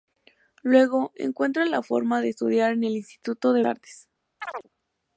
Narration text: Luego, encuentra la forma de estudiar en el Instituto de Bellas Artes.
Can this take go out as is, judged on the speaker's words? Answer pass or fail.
fail